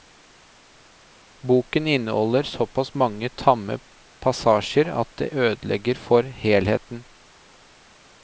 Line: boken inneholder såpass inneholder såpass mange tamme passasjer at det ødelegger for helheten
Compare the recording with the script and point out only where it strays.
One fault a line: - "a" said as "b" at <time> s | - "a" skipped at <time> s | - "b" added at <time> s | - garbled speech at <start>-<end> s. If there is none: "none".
- "inneholder såpass" skipped at 2.9 s